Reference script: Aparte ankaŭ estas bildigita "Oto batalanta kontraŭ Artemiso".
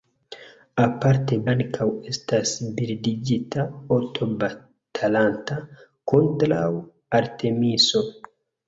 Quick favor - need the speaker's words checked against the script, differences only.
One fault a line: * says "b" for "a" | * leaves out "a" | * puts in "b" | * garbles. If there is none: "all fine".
all fine